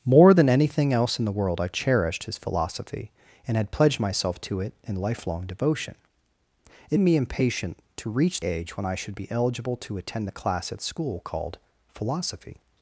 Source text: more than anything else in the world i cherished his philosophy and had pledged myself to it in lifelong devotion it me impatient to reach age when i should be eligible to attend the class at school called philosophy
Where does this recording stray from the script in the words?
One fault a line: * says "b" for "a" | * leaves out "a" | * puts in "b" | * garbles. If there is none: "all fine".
all fine